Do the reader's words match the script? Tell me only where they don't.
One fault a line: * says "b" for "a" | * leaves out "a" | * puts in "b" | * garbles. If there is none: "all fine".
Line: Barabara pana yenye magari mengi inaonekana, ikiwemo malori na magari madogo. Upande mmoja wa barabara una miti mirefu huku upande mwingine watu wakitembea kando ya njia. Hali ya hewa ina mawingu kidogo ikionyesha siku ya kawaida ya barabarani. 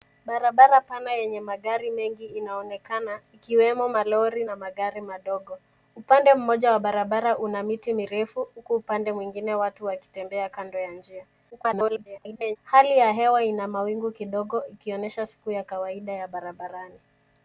* garbles